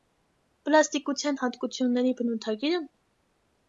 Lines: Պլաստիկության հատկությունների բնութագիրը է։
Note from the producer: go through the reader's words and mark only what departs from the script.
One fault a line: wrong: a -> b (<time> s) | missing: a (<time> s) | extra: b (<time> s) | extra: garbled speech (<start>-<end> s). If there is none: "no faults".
no faults